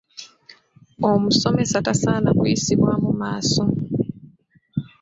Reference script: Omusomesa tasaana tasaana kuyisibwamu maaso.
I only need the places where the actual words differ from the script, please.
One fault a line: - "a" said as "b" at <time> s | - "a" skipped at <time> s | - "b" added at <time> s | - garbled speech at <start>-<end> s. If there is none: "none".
- "tasaana" skipped at 2.3 s